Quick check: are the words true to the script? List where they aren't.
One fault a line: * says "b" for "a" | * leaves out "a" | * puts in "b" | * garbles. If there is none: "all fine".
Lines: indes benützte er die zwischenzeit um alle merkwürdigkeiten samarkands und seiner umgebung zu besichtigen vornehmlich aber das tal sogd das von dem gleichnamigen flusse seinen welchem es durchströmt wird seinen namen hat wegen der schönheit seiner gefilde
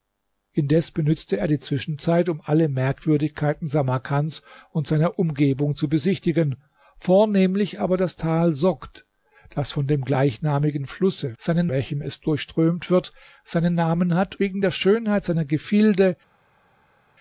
all fine